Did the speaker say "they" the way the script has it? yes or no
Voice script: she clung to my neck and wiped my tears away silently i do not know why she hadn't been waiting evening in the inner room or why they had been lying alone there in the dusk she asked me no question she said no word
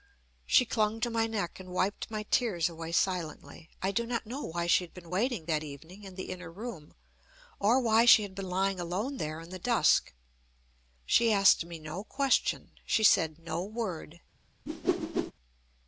no